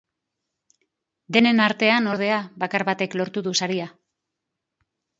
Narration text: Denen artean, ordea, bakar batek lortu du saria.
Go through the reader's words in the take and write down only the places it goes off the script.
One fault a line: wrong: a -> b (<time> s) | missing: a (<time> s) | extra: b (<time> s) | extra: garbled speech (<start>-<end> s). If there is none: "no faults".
no faults